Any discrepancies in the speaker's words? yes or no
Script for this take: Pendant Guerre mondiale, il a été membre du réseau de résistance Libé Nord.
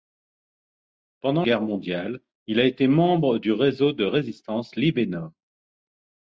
no